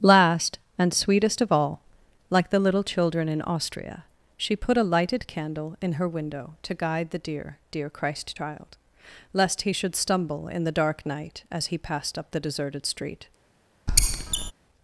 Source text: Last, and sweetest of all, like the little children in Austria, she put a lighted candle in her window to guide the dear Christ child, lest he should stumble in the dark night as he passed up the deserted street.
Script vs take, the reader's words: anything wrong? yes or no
yes